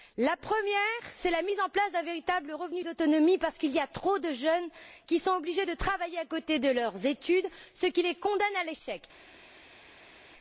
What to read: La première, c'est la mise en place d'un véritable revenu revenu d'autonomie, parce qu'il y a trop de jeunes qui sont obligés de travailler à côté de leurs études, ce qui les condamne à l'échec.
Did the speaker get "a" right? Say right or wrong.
right